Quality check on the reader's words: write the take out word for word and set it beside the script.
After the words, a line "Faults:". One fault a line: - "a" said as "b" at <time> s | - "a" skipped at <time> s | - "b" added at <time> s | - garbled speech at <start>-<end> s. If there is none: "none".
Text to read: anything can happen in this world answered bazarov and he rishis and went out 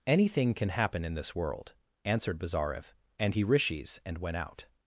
anything can happen in this world answered bazarov and he rishis and went out
Faults:
none